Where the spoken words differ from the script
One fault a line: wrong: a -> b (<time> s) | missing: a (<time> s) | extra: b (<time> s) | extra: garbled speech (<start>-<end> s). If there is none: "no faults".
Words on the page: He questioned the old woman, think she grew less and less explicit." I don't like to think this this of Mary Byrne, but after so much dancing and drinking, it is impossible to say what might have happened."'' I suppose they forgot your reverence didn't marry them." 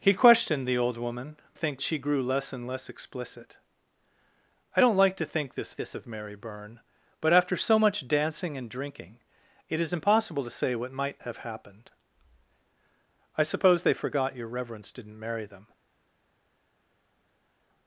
no faults